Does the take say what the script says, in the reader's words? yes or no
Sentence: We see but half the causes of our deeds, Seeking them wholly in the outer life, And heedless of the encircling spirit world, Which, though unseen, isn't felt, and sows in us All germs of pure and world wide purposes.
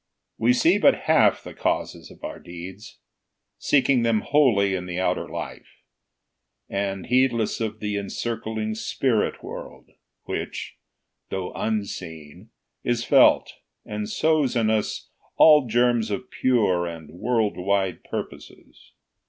no